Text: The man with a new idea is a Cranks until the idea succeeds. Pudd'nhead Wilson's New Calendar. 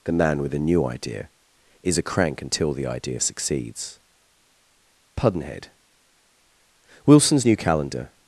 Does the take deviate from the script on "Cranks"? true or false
true